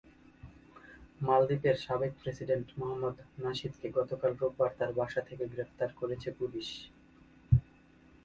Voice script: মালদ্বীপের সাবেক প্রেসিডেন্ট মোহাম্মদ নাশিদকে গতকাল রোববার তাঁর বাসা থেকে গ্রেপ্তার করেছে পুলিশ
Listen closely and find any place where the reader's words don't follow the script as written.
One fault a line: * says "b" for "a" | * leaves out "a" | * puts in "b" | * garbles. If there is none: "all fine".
all fine